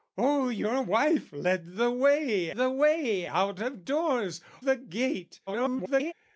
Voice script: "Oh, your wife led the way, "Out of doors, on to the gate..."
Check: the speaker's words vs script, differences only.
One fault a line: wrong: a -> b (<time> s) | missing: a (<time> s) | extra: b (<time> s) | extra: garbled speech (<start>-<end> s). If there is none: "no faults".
extra: the way (2.5 s)
missing: on to (4.4 s)
extra: garbled speech (5.5-6.1 s)